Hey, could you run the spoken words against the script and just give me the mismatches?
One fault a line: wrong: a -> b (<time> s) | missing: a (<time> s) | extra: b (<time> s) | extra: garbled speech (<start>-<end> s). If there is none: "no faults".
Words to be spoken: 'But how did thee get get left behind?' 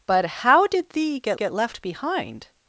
no faults